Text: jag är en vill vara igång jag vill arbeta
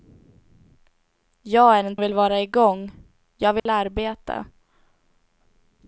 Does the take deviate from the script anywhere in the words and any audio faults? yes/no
yes